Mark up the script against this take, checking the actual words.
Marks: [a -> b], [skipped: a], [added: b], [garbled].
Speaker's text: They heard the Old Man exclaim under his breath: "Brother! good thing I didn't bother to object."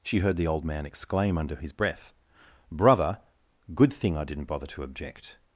[They -> She] heard the Old Man exclaim under his breath: "Brother! good thing I didn't bother to object."